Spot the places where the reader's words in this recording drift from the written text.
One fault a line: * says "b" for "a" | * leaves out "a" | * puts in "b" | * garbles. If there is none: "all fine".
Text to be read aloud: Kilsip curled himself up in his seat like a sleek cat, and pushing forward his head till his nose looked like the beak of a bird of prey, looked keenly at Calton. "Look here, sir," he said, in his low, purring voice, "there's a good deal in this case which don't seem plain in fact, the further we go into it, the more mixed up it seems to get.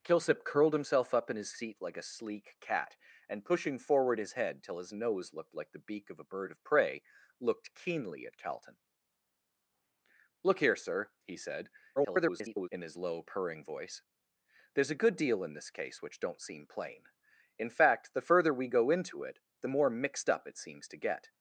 * garbles